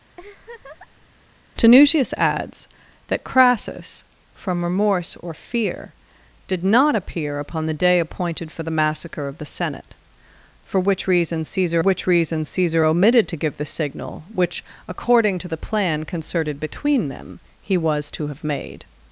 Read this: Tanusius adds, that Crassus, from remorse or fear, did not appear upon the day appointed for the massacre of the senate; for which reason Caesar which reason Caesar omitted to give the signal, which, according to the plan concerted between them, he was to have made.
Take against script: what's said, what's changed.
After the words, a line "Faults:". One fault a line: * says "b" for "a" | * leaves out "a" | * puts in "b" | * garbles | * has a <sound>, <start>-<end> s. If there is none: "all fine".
Tanusius adds, that Crassus, from remorse or fear, did not appear upon the day appointed for the massacre of the senate; for which reason Caesar which reason Caesar omitted to give the signal, which, according to the plan concerted between them, he was to have made.
Faults:
* has a laugh, 0.2-1.1 s